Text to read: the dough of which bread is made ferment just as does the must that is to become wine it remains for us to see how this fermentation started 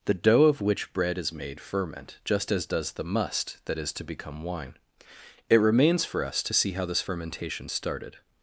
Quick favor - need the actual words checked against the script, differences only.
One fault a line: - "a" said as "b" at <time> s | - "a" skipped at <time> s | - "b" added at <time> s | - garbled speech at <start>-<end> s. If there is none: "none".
none